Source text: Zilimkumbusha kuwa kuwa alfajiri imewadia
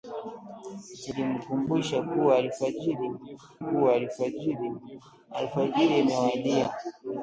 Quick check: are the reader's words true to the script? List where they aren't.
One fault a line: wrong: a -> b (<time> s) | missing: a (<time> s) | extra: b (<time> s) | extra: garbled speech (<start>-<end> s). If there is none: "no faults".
no faults